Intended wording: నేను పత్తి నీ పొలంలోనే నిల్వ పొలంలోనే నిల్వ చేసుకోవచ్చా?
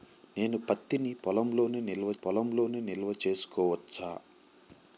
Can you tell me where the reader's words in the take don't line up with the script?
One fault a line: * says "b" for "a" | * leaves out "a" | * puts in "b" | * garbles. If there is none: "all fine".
all fine